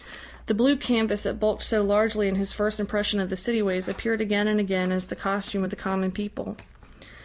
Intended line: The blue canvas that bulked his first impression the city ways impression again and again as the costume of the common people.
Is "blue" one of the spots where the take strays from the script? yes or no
no